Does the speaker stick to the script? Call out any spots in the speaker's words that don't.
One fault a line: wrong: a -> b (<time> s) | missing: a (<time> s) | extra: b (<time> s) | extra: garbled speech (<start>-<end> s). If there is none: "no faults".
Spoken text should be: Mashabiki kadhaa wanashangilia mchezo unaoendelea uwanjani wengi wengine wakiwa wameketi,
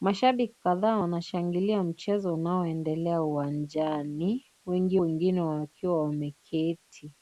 no faults